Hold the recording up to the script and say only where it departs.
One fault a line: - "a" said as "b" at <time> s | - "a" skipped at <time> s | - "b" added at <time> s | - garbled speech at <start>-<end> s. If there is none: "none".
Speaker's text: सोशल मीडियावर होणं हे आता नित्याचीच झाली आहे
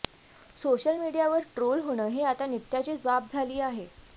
- "ट्रोल" added at 1.6 s
- "बाब" added at 3.0 s